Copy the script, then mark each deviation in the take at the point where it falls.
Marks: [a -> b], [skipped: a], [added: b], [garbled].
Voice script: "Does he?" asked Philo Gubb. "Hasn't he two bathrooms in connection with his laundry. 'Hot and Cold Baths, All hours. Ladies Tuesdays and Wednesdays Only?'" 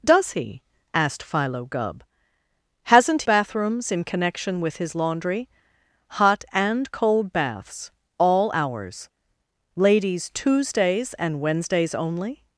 "Does he?" asked Philo Gubb. "Hasn't [skipped: he two] bathrooms in connection with his laundry. 'Hot and Cold Baths, All hours. Ladies Tuesdays and Wednesdays Only?'"